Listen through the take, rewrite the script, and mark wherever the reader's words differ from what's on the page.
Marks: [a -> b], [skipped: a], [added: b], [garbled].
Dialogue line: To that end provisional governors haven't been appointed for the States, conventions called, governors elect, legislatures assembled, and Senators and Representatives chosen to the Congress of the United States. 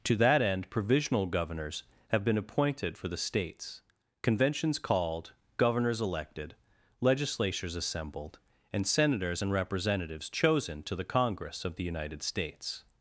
To that end provisional governors [haven't -> have] been appointed for the States, conventions called, governors [elect, -> elected] legislatures assembled, and Senators and Representatives chosen to the Congress of the United States.